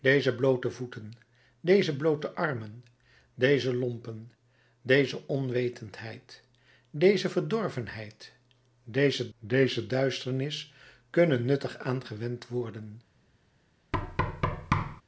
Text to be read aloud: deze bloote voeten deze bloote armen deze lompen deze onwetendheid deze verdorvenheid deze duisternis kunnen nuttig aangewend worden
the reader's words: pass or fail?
fail